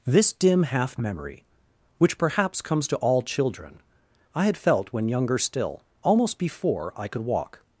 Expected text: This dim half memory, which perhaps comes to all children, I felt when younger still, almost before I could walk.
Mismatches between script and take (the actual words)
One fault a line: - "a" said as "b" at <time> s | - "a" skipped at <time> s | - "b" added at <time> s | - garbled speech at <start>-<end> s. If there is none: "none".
- "had" added at 4.5 s